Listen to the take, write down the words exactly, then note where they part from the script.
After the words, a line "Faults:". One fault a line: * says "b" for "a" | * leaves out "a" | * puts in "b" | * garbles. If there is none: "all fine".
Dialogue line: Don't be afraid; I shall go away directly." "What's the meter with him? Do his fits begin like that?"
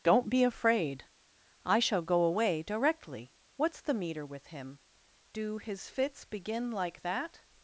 Don't be afraid; I shall go away directly." "What's the meter with him? Do his fits begin like that?"
Faults:
all fine